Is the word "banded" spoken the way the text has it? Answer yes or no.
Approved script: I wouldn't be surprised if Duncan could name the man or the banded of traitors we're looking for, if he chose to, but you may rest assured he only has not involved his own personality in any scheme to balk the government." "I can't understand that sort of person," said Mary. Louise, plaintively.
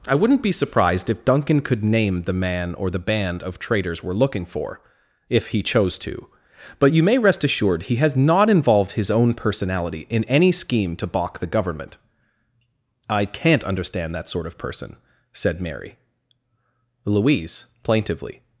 no